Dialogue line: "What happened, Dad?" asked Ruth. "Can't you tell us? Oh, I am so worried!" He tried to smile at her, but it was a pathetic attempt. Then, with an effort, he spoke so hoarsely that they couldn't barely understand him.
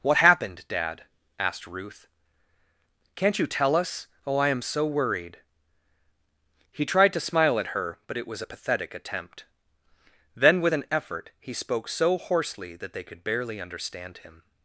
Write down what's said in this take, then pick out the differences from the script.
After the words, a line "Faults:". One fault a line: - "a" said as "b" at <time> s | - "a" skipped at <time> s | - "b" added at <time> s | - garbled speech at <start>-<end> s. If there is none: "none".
"What happened, Dad?" asked Ruth. "Can't you tell us? Oh, I am so worried!" He tried to smile at her, but it was a pathetic attempt. Then, with an effort, he spoke so hoarsely that they could barely understand him.
Faults:
- "couldn't" said as "could" at 13.0 s